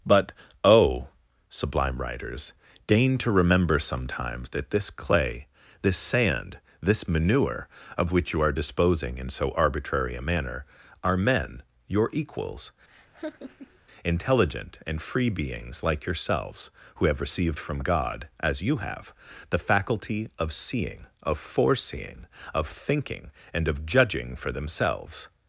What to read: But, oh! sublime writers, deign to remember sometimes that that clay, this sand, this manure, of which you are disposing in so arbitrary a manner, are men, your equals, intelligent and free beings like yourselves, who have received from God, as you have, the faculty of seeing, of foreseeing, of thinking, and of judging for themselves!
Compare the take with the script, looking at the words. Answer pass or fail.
fail